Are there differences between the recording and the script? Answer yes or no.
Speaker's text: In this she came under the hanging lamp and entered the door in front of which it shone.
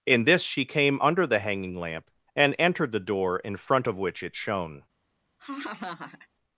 no